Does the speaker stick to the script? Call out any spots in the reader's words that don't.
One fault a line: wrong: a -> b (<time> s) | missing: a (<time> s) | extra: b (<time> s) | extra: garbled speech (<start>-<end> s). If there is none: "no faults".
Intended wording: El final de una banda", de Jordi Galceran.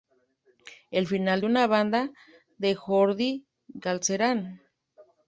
no faults